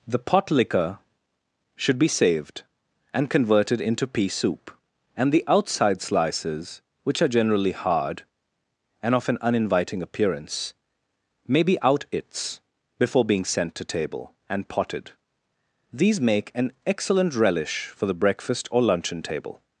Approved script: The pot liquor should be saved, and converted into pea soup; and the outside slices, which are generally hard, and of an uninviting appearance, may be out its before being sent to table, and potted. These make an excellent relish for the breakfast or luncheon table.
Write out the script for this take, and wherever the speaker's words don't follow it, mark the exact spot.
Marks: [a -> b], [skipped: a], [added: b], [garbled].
The pot liquor should be saved, and converted into pea soup; and the outside slices, which are generally hard, and of an uninviting appearance, may be out its before being sent to table, and potted. These make an excellent relish for the breakfast or luncheon table.